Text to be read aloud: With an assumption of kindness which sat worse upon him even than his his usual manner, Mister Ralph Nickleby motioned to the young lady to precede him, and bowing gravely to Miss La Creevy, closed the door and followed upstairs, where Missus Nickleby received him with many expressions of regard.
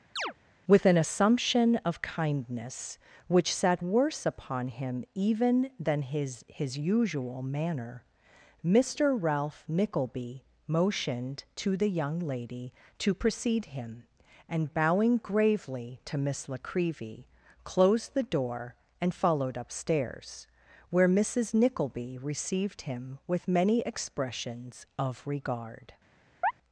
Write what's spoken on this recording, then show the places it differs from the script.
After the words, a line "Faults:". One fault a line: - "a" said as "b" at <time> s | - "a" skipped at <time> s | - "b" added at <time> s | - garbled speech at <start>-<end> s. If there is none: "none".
With an assumption of kindness which sat worse upon him even than his his usual manner, Mister Ralph Nickleby motioned to the young lady to precede him, and bowing gravely to Miss La Creevy, closed the door and followed upstairs, where Missus Nickleby received him with many expressions of regard.
Faults:
none